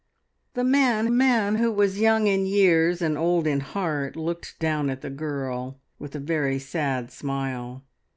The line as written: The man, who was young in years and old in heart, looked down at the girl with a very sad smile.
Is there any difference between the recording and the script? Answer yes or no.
yes